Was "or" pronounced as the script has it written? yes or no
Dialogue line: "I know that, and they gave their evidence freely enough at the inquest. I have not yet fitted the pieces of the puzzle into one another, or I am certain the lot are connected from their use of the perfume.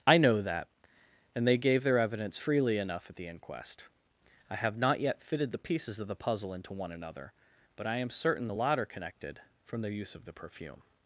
no